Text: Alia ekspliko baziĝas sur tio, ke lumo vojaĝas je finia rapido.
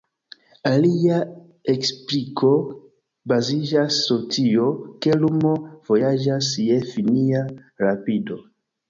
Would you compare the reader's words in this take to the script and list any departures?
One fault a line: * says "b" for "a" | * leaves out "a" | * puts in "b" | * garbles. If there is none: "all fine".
all fine